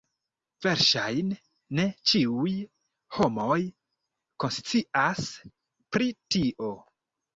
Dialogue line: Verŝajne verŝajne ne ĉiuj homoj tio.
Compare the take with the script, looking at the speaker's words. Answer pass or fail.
fail